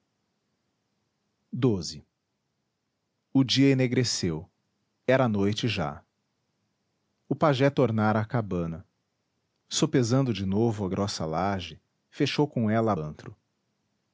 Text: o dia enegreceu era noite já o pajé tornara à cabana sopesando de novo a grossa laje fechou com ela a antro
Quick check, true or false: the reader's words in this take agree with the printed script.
true